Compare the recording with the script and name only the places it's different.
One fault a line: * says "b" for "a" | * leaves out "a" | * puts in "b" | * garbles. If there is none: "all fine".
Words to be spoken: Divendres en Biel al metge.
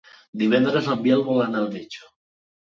* puts in "vol anar"